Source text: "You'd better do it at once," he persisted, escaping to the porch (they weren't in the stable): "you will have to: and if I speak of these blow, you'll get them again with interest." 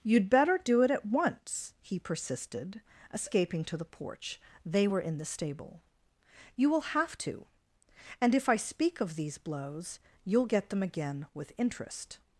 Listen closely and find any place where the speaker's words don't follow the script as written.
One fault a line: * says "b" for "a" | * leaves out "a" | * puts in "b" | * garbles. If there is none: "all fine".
* says "were" for "weren't"
* says "blows" for "blow"